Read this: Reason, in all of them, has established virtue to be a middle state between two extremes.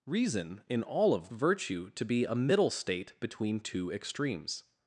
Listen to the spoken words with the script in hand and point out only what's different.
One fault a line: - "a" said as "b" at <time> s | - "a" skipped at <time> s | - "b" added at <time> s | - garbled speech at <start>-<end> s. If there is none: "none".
- "them has established" skipped at 1.3 s